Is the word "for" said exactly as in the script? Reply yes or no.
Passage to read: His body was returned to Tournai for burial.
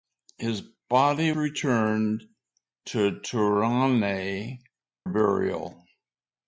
no